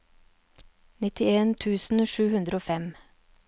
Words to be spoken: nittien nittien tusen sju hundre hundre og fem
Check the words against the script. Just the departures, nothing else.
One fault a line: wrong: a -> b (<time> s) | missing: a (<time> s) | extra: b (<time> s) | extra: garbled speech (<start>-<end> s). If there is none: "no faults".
missing: nittien (1.5 s)
missing: hundre (2.6 s)